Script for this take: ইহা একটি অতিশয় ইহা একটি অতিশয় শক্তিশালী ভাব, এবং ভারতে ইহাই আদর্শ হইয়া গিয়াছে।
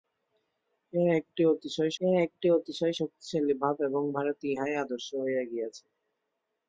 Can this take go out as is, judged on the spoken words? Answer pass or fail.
pass